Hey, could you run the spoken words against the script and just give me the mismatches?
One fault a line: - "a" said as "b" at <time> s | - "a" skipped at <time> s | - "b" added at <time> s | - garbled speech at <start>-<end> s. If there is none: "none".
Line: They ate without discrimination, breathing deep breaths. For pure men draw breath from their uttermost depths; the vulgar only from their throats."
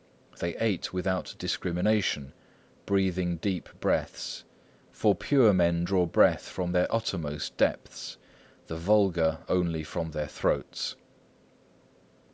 none